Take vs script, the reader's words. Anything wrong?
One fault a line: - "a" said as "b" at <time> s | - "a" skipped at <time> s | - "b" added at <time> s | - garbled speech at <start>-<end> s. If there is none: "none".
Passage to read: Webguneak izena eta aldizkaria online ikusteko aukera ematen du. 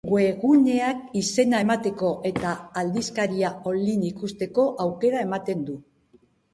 - "emateko" added at 1.6 s